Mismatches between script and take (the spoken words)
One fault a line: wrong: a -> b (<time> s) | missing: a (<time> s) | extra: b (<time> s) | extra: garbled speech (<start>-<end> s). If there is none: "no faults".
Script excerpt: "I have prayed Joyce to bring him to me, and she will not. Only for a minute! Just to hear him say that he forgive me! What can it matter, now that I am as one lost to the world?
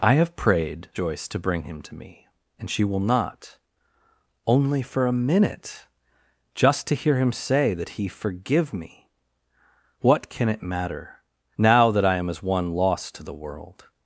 no faults